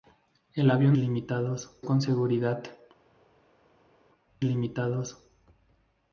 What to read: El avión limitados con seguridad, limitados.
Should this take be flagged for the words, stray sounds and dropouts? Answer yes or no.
no